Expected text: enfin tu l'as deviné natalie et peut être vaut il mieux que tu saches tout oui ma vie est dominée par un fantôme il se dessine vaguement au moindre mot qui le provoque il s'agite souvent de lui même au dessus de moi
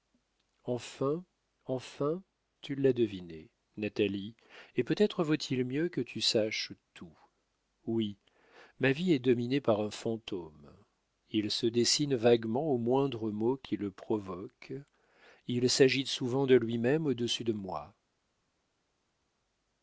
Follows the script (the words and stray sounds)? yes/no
no